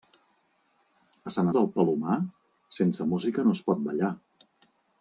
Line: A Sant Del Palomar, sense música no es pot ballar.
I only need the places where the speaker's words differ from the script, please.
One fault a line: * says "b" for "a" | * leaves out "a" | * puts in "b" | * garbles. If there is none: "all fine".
all fine